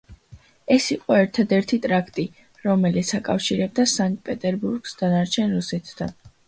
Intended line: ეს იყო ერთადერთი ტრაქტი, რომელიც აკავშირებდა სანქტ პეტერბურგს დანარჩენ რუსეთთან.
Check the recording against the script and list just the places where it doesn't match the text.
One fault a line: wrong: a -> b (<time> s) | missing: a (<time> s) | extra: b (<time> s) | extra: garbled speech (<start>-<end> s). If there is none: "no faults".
no faults